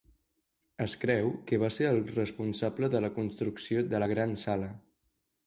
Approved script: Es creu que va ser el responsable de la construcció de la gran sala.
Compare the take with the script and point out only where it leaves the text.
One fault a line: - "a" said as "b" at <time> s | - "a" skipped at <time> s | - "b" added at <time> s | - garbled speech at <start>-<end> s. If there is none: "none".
none